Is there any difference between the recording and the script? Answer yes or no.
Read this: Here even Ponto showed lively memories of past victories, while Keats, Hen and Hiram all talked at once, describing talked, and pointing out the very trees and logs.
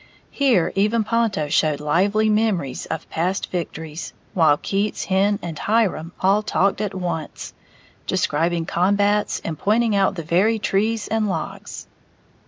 yes